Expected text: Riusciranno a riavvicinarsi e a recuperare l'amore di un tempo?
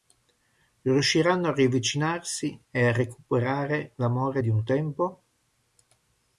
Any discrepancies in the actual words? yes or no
no